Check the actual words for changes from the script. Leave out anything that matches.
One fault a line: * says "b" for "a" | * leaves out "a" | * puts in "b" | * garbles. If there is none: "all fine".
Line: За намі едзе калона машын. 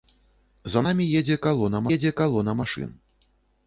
* puts in "едзе калона"